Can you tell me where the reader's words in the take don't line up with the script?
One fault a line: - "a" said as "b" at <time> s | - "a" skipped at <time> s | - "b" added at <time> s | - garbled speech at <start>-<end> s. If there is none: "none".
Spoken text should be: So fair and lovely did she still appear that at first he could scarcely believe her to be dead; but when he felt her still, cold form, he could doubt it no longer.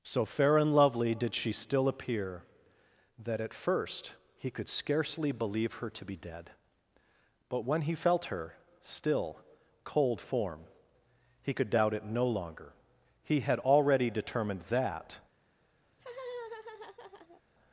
- "He had already determined that" added at 13.2 s